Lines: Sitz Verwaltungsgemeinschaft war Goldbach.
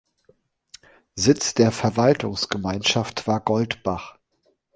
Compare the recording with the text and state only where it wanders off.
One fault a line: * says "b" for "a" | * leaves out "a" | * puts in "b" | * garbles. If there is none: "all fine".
* puts in "der"